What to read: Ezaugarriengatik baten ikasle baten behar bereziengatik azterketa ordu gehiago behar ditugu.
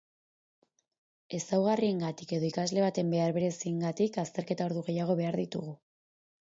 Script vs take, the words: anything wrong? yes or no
yes